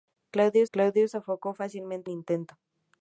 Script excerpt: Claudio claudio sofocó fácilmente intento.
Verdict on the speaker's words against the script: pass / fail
pass